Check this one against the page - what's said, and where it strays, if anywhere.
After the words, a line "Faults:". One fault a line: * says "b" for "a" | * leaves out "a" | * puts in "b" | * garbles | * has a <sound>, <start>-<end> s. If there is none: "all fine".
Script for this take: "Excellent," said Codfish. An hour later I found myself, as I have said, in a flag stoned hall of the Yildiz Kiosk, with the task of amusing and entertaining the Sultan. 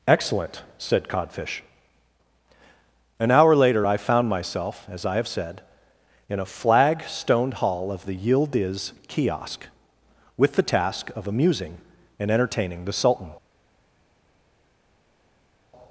"Excellent," said Codfish. An hour later I found myself, as I have said, in a flag stoned hall of the Yildiz Kiosk, with the task of amusing and entertaining the Sultan.
Faults:
all fine